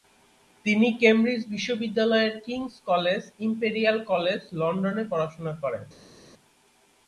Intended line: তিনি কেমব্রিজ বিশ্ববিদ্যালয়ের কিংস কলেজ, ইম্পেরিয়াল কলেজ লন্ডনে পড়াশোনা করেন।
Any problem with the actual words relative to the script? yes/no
no